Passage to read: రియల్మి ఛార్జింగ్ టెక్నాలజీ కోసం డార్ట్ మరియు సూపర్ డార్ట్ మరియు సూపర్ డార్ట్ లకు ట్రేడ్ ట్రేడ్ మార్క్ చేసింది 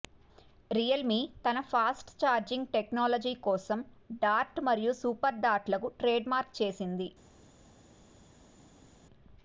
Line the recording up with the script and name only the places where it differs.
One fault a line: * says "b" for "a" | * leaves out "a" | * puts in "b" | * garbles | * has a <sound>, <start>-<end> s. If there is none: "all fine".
* puts in "తన ఫాస్ట్"
* leaves out "మరియు సూపర్ డార్ట్"
* leaves out "ట్రేడ్"